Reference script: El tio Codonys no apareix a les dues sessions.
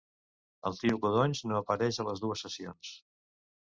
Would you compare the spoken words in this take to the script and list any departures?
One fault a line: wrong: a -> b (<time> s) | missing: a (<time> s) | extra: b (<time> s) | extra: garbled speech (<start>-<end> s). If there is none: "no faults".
no faults